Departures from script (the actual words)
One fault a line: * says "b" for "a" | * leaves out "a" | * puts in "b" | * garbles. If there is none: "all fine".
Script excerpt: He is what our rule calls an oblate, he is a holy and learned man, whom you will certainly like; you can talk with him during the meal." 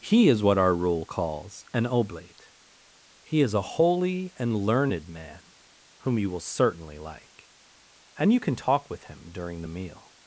* puts in "and"